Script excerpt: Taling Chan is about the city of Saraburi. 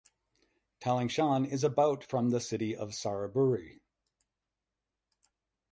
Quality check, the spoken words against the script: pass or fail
fail